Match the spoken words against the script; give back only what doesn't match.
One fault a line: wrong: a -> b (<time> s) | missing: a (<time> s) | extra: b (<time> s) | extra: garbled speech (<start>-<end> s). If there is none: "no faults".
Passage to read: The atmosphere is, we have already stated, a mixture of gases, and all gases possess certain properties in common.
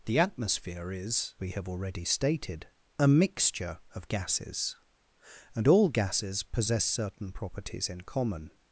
no faults